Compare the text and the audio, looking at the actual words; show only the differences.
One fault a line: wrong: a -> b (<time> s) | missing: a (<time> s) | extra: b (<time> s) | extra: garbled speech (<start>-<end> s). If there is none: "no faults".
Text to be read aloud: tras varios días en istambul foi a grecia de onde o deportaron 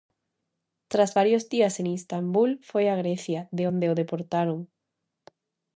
no faults